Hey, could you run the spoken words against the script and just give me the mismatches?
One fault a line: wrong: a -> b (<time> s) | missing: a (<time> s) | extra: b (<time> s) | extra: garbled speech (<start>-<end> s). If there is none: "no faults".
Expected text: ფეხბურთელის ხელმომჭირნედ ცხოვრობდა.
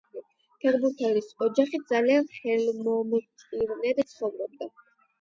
extra: ოჯახი ძალიან (1.5 s)